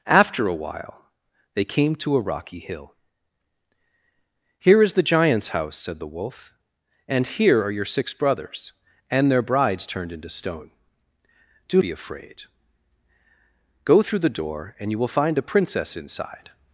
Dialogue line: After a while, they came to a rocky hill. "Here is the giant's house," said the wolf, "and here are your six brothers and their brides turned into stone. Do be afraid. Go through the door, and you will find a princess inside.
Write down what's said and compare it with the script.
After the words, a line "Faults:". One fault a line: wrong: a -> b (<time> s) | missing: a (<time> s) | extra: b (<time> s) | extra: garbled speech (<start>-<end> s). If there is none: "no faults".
After a while, they came to a rocky hill. "Here is the giant's house," said the wolf, "and here are your six brothers and their brides turned into stone. Do be afraid. Go through the door, and you will find a princess inside.
Faults:
no faults